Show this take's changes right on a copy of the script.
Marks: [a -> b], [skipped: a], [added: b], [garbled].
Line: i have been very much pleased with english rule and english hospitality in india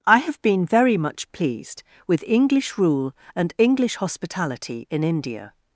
i have been very much pleased with english rule and english hospitality in india